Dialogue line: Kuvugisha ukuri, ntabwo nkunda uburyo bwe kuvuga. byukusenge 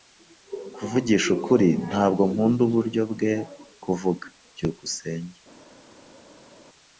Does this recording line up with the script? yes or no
yes